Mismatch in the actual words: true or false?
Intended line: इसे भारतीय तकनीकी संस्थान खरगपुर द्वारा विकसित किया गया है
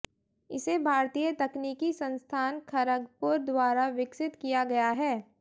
false